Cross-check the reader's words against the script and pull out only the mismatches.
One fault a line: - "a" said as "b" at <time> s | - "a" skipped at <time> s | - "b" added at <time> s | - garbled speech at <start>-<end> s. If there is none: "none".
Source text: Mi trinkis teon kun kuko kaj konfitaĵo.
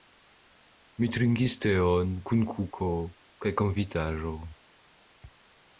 none